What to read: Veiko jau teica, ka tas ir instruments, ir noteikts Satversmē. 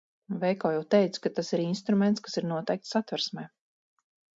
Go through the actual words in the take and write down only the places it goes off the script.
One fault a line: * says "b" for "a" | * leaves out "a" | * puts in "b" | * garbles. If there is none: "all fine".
* puts in "kas"